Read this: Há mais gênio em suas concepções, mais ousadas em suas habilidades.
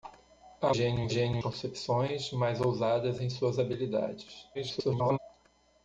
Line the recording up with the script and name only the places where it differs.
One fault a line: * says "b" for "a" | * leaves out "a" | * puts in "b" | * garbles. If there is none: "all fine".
* leaves out "mais"
* says "gênio" for "suas"
* garbles